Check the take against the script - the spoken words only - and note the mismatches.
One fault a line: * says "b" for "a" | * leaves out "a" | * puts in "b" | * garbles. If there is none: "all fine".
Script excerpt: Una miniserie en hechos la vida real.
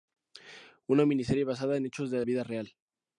* puts in "basada"
* puts in "de"